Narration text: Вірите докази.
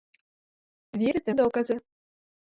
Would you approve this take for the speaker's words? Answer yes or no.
yes